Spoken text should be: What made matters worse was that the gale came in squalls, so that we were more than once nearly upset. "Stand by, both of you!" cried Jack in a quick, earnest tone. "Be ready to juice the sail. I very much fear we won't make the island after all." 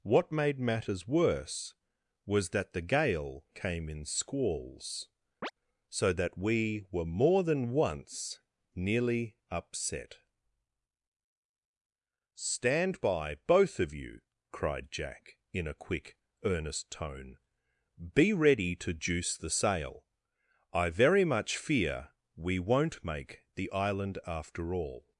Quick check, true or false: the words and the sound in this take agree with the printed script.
false